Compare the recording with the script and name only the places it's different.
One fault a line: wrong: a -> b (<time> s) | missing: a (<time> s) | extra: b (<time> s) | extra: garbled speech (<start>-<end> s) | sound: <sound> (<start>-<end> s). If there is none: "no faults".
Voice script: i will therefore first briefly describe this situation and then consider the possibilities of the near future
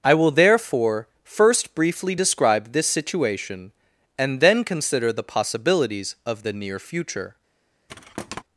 sound: thud (7.9-8.4 s)